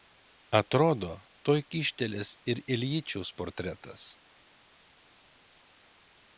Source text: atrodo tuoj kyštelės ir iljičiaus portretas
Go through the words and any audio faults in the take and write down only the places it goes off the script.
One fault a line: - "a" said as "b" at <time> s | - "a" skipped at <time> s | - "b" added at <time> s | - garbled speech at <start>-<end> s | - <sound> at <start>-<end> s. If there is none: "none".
none